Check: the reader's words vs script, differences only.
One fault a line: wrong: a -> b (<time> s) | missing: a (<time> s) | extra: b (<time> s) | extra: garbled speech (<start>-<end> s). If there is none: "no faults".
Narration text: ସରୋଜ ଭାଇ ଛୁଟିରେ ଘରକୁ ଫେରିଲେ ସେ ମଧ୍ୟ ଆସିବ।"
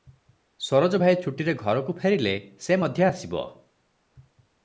no faults